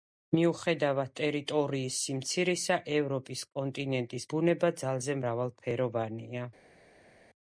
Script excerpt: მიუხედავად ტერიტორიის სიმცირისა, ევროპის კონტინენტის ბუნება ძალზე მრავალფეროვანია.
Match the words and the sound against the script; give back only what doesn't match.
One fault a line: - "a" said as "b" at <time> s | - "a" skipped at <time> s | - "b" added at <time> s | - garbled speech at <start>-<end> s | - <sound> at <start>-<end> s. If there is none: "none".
none